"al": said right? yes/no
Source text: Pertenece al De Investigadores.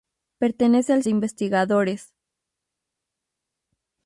yes